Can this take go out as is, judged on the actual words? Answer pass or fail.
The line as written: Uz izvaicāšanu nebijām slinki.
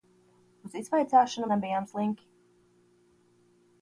pass